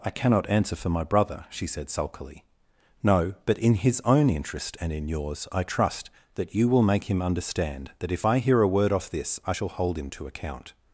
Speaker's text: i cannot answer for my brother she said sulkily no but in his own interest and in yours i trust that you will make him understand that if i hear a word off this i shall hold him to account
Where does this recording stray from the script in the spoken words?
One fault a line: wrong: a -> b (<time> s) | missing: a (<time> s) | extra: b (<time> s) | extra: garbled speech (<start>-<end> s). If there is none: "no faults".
no faults